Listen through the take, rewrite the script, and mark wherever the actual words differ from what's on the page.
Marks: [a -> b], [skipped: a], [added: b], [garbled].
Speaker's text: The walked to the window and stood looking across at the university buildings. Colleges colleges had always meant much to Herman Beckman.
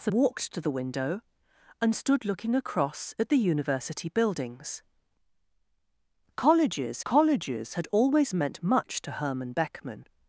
The walked to the window and stood looking across at the university buildings. Colleges colleges had always meant much to Herman Beckman.